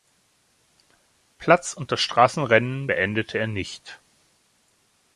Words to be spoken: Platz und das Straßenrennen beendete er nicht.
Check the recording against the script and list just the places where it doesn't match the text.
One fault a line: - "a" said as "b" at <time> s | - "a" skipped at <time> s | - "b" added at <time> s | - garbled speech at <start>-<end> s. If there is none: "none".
none